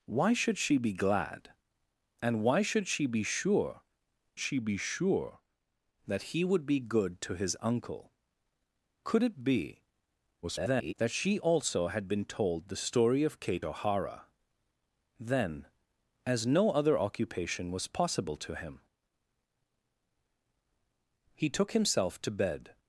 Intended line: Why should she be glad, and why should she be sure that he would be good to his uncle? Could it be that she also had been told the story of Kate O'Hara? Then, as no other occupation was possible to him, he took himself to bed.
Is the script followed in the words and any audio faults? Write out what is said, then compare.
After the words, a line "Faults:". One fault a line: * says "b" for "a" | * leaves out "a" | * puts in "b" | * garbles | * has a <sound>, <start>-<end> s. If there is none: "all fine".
Why should she be glad, and why should she be sure she be sure that he would be good to his uncle? Could it be [garbled] that she also had been told the story of Kate O'Hara? Then, as no other occupation was possible to him, he took himself to bed.
Faults:
* puts in "she be sure"
* garbles